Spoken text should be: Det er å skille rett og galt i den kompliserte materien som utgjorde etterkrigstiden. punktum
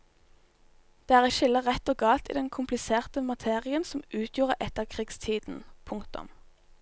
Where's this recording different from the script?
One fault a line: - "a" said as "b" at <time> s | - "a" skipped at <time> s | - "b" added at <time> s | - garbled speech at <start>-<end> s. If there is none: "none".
none